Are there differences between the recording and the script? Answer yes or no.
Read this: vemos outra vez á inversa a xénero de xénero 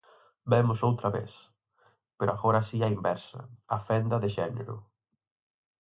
yes